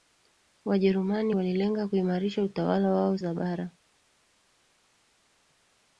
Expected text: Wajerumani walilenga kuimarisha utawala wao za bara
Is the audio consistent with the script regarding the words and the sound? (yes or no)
yes